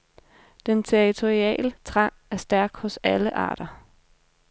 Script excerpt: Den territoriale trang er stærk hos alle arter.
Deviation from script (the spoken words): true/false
false